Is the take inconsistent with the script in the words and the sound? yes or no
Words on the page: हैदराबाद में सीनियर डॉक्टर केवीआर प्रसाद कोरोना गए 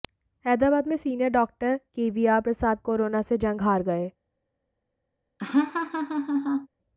yes